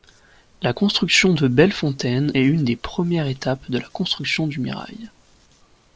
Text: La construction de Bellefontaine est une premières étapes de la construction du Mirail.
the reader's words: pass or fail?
fail